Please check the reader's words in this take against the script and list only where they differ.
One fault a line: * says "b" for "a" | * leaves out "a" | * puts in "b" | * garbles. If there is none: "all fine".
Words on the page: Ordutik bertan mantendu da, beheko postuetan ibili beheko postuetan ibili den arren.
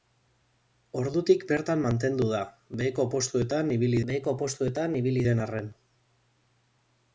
all fine